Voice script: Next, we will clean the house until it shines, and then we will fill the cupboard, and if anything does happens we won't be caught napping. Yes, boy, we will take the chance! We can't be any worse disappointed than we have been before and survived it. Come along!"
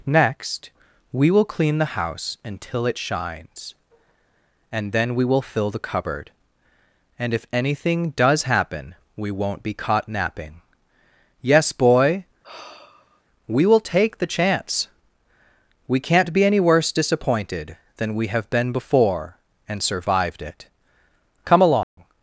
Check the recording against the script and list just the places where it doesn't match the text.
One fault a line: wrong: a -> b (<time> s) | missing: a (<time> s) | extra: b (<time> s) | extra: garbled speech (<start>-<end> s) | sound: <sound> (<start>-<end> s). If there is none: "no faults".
wrong: happens -> happen (8.4 s)
sound: sigh (12.4-13.2 s)
sound: dropout (21.8-22.0 s)